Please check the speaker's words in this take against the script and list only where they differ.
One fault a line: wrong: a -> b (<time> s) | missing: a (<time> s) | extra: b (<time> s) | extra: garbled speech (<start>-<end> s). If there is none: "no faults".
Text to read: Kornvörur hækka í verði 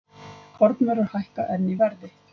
extra: enn (1.6 s)